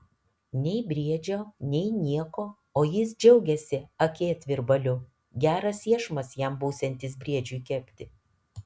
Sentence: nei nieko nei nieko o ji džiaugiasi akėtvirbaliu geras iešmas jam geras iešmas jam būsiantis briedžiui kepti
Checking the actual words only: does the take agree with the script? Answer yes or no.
no